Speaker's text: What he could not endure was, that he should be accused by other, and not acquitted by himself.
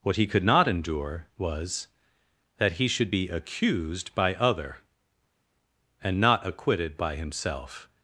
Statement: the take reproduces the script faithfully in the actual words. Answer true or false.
true